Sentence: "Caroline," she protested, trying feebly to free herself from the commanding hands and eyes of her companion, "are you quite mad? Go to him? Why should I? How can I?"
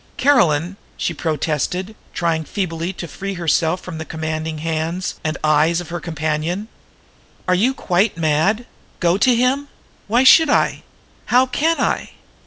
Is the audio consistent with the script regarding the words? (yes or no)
yes